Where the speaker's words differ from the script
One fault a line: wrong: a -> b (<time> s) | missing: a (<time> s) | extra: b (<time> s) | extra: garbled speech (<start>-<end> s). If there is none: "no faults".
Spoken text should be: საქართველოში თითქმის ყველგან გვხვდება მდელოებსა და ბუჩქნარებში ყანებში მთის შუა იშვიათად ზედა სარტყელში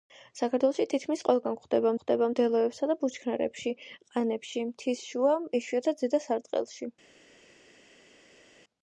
extra: გვხვდება (1.9 s)